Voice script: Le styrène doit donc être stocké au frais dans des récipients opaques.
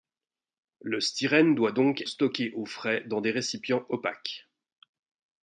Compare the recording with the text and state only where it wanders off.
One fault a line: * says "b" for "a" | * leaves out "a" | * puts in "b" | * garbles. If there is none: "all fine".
* leaves out "être"